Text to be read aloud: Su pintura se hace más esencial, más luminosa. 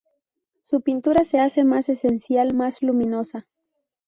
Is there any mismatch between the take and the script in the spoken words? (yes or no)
no